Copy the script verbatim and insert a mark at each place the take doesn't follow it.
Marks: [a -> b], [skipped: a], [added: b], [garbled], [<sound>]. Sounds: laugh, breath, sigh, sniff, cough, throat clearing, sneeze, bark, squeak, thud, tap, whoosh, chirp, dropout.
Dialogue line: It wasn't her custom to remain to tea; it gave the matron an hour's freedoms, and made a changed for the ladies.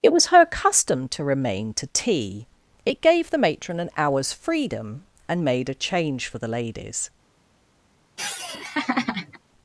It [wasn't -> was] her custom to remain to tea; it gave the matron an hour's [freedoms, -> freedom] and made a [changed -> change] for the ladies. [laugh]